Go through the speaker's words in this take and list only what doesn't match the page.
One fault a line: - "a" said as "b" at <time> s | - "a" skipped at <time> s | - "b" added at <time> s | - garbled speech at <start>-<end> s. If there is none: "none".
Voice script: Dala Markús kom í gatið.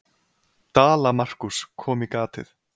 none